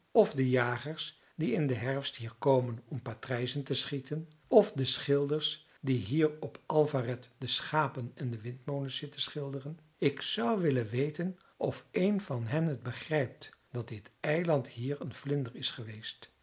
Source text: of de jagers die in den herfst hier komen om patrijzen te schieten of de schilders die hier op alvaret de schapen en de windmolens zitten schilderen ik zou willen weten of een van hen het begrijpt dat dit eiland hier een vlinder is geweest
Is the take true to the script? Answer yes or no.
yes